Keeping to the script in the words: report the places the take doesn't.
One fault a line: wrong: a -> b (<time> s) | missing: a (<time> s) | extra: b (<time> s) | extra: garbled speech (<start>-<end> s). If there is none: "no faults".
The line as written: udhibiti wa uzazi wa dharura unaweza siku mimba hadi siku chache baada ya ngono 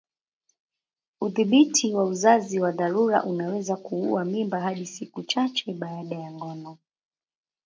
wrong: siku -> kuua (3.8 s)